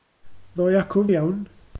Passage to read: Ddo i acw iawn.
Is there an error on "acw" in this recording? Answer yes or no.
no